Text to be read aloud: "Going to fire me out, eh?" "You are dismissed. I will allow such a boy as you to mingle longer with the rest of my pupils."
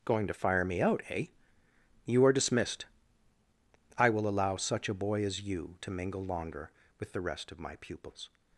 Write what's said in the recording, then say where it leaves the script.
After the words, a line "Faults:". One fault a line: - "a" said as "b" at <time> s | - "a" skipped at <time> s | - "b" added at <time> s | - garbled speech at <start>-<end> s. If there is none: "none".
"Going to fire me out, eh?" "You are dismissed. I will allow such a boy as you to mingle longer with the rest of my pupils."
Faults:
none